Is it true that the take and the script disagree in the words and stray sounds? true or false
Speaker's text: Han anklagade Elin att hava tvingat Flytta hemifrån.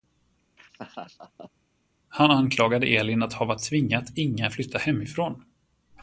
true